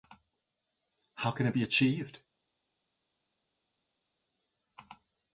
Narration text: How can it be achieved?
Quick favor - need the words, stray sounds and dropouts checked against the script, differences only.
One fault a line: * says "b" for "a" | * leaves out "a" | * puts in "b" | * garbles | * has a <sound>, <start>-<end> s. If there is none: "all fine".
all fine